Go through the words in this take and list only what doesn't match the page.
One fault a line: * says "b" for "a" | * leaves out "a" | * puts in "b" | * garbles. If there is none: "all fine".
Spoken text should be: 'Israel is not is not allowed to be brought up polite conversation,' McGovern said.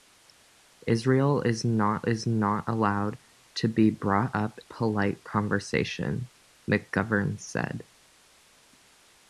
all fine